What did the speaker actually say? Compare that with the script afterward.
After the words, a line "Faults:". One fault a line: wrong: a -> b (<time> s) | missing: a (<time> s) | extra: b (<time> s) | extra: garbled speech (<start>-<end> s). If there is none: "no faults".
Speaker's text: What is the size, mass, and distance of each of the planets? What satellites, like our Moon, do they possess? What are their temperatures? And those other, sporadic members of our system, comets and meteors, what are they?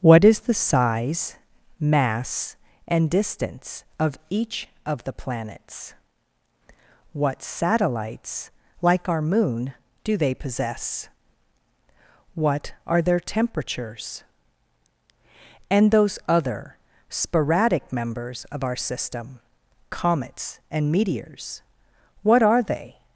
What is the size, mass, and distance of each of the planets? What satellites, like our Moon, do they possess? What are their temperatures? And those other, sporadic members of our system, comets and meteors, what are they?
Faults:
no faults